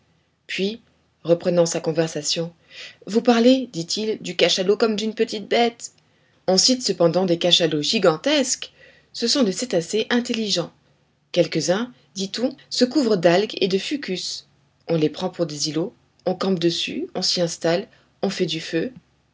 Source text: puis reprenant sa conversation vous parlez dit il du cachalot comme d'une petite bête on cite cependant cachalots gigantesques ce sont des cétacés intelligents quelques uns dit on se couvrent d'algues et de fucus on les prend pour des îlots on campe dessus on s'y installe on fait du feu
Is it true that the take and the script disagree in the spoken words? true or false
true